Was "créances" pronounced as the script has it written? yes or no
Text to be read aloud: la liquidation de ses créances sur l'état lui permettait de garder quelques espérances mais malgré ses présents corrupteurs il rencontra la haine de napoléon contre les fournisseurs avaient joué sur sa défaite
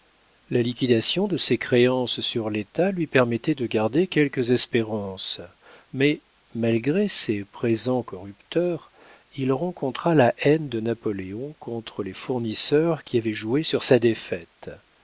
yes